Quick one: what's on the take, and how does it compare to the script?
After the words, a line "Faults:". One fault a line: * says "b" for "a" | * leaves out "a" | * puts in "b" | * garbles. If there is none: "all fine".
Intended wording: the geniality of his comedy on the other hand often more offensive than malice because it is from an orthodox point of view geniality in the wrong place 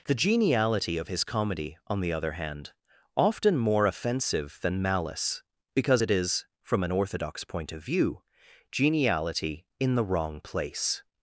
the geniality of his comedy on the other hand often more offensive than malice because it is from an orthodox point of view geniality in the wrong place
Faults:
all fine